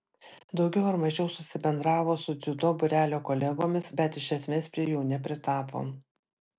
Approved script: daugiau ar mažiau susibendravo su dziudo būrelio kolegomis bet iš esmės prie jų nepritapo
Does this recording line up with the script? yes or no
yes